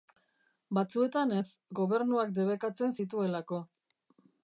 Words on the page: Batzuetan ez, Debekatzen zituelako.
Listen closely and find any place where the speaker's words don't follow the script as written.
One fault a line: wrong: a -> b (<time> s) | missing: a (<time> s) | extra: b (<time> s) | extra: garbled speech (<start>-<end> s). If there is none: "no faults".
extra: Gobernuak (1.8 s)